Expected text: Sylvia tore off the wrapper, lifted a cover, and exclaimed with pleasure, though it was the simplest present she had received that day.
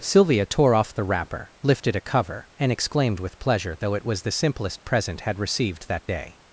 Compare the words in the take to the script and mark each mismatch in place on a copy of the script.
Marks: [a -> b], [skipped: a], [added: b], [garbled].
Sylvia tore off the wrapper, lifted a cover, and exclaimed with pleasure, though it was the simplest present [skipped: she] had received that day.